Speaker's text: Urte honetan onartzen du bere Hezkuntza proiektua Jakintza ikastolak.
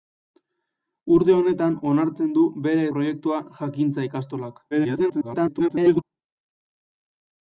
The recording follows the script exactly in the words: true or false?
false